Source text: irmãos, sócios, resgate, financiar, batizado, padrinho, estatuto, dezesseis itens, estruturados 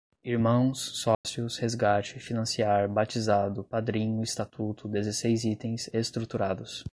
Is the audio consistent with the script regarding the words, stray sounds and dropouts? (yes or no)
no